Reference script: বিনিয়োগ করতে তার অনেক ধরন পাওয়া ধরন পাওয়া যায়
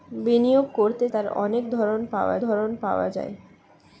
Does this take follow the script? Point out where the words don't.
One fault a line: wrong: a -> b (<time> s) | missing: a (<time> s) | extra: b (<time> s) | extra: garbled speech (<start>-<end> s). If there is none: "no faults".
no faults